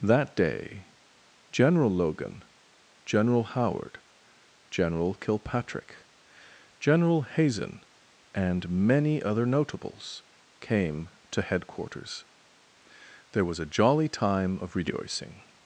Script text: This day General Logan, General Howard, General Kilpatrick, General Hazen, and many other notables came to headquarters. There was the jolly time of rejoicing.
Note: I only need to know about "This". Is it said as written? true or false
false